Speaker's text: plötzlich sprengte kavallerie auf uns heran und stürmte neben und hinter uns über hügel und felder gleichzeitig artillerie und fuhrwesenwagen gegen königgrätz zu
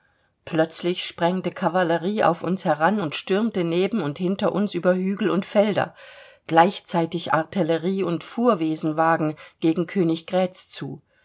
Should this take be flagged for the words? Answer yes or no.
no